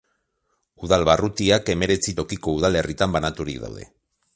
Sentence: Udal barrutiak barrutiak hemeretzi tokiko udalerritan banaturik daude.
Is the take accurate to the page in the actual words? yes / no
no